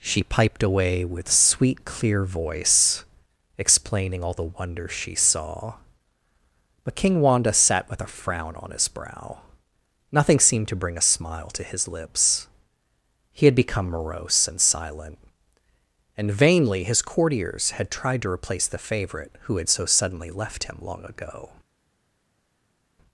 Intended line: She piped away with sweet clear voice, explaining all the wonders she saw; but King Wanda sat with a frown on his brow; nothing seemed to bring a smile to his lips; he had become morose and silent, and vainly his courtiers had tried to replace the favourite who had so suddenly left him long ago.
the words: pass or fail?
pass